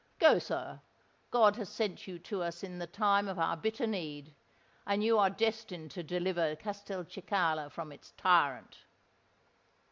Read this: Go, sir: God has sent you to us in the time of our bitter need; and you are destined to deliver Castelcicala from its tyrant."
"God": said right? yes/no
yes